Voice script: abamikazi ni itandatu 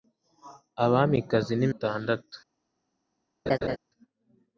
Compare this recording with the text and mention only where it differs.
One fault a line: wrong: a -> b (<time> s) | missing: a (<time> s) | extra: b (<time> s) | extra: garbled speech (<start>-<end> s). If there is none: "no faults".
no faults